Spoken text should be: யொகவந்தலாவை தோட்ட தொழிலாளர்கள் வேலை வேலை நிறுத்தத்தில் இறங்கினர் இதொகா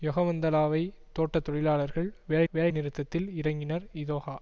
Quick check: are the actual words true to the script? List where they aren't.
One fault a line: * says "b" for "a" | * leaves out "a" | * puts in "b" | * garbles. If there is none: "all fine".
all fine